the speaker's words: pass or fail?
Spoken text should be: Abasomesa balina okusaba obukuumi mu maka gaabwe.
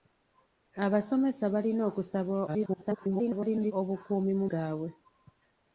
fail